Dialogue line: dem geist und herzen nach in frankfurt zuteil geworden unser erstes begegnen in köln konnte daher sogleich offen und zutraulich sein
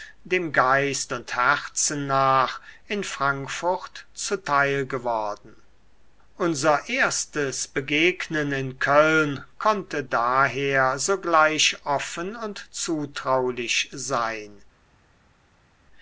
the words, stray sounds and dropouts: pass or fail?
pass